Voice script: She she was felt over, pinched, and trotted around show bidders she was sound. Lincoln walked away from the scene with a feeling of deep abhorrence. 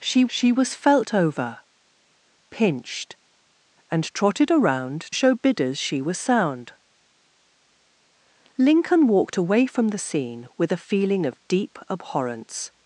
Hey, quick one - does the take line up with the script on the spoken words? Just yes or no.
yes